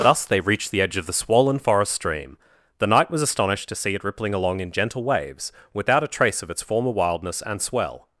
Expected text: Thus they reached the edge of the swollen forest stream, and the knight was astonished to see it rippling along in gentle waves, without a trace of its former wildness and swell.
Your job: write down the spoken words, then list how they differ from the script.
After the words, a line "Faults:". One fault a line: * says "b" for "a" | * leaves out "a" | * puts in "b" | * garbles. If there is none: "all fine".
Thus they reached the edge of the swollen forest stream, the knight was astonished to see it rippling along in gentle waves, without a trace of its former wildness and swell.
Faults:
* leaves out "and"